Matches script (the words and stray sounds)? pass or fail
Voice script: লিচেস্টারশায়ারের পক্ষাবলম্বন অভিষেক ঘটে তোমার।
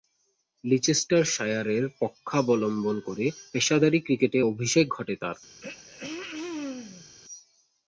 fail